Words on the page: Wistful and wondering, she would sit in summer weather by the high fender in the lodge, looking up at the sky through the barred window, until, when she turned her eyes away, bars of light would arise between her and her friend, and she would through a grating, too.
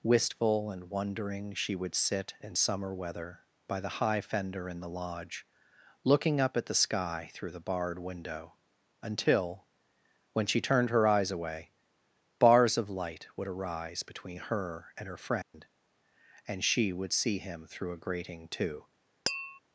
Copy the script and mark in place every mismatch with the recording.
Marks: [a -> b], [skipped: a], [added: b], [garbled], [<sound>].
Wistful and wondering, she would sit in summer weather by the high fender in the lodge, looking up at the sky through the barred window, until, when she turned her eyes away, bars of light would arise between her and her friend, [dropout] and she would [added: see him] through a grating, too. [tap]